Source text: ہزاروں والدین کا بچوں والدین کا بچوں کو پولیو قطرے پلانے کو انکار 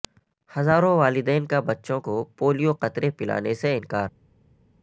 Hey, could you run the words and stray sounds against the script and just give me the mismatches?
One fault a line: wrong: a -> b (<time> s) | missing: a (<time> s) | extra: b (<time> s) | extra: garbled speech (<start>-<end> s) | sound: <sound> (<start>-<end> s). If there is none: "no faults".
missing: والدین کا بچوں (2.0 s)
wrong: کو -> سے (3.5 s)